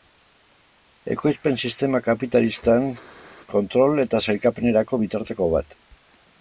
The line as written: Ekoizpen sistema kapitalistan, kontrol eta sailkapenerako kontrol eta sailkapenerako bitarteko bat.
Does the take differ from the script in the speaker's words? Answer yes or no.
yes